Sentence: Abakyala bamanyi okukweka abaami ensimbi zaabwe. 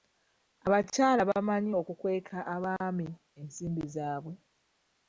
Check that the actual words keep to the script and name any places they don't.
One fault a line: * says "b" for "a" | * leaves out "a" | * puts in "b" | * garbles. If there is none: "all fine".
all fine